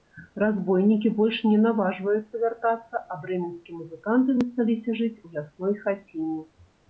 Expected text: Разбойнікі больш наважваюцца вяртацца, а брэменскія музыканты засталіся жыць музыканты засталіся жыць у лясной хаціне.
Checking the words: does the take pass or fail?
fail